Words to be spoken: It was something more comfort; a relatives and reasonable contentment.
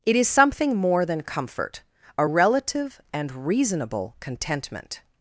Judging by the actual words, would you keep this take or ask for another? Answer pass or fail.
fail